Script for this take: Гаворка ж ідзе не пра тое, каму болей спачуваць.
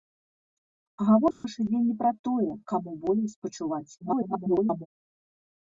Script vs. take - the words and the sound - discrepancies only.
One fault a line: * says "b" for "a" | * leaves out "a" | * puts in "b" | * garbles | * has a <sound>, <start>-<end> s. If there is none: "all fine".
* has a dropout, 1.3-1.4 s
* garbles